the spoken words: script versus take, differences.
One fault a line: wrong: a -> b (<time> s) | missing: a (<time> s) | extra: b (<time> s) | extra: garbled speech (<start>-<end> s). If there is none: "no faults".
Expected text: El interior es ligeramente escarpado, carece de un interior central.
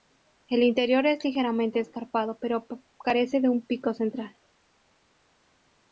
extra: pero (2.4 s)
wrong: interior -> pico (3.6 s)